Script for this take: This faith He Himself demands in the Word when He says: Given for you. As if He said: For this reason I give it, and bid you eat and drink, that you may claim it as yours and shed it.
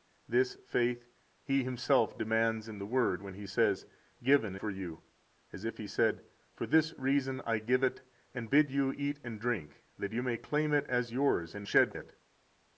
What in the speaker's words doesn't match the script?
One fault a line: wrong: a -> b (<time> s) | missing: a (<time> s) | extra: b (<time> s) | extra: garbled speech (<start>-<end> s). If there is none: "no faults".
no faults